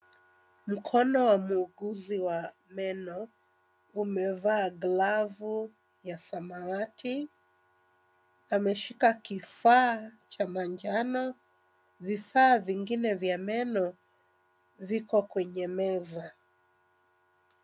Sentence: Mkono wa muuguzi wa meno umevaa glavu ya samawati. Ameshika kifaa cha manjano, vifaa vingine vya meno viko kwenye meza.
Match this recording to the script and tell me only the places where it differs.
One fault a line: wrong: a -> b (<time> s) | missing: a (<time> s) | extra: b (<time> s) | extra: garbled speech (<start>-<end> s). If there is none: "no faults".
no faults